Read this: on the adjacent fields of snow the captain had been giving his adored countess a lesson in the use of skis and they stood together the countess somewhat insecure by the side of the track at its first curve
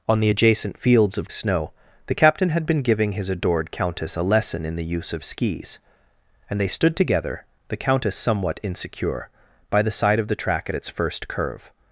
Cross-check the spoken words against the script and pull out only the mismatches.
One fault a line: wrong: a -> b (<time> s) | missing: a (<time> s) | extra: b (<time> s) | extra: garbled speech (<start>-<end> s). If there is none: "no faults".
no faults